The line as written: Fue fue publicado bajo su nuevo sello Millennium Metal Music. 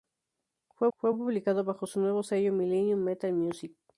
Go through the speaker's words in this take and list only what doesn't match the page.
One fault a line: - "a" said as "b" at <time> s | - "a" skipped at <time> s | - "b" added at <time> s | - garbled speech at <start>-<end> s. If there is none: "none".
none